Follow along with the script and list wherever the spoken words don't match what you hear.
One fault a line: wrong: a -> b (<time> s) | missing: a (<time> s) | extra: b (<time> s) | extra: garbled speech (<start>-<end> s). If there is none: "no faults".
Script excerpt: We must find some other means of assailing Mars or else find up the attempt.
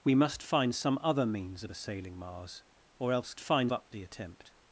no faults